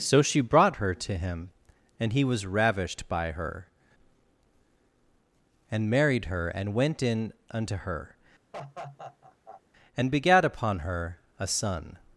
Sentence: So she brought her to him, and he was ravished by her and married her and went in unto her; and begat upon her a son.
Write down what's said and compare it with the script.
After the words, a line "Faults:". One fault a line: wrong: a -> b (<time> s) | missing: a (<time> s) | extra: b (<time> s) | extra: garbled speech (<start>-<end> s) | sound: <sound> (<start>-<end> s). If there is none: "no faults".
So she brought her to him, and he was ravished by her and married her and went in unto her; and begat upon her a son.
Faults:
sound: laugh (8.5-9.6 s)